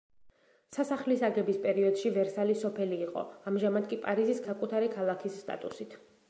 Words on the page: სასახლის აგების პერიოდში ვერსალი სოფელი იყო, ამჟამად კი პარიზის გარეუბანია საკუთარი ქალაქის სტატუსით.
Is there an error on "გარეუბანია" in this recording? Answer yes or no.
yes